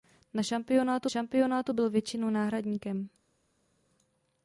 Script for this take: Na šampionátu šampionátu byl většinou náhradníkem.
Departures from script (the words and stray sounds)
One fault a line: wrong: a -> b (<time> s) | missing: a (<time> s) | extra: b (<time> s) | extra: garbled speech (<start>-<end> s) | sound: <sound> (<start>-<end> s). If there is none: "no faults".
no faults